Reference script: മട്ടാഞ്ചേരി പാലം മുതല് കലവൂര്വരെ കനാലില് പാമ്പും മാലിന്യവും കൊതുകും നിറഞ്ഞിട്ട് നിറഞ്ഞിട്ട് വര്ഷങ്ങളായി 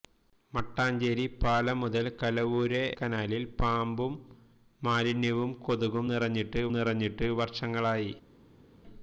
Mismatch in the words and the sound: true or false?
false